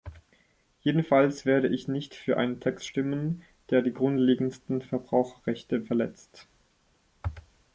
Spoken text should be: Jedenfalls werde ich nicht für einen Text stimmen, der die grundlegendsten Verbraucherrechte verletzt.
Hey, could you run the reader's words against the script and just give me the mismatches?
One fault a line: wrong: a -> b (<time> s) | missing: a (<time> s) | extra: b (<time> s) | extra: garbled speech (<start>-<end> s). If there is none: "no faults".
no faults